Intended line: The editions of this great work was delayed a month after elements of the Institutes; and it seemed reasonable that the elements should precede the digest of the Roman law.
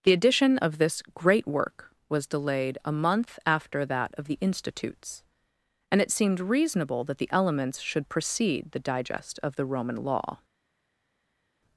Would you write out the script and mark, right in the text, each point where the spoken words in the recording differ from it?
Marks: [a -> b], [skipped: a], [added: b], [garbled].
The [editions -> edition] of this great work was delayed a month after [elements -> that] of the Institutes; and it seemed reasonable that the elements should precede the digest of the Roman law.